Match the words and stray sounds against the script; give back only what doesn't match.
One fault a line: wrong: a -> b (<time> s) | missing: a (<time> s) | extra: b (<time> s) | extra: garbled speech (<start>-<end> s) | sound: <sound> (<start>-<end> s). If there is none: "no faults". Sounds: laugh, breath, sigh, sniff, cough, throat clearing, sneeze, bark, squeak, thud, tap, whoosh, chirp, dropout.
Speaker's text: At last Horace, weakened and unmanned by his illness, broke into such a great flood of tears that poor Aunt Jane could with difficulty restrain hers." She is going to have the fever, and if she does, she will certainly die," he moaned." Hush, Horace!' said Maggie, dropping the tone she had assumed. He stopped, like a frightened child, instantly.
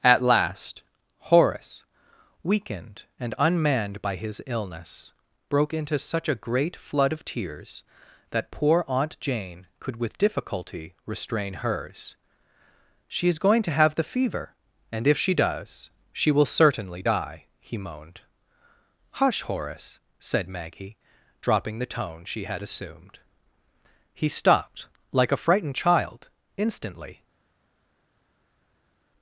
no faults